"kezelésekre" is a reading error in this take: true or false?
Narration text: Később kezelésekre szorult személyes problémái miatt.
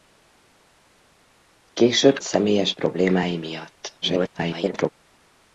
true